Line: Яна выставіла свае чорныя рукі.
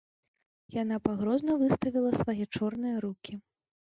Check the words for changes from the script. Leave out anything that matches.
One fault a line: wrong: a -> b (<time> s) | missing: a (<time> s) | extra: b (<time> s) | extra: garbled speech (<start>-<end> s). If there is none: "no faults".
extra: пагрозна (1.1 s)